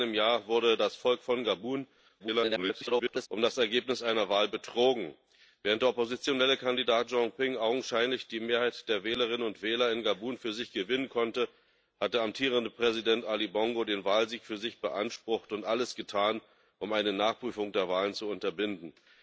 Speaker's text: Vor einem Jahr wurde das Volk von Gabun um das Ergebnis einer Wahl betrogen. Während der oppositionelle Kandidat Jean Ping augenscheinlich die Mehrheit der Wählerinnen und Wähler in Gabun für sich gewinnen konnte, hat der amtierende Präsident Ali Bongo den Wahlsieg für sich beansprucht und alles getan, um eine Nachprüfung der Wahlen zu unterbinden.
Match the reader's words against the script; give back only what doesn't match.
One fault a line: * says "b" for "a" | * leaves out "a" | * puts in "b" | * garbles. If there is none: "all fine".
* garbles